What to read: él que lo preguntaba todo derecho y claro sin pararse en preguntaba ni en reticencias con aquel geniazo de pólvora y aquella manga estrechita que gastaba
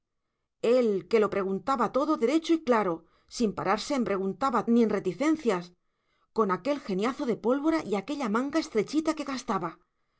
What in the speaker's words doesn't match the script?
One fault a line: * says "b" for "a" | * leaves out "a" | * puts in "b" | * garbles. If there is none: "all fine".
all fine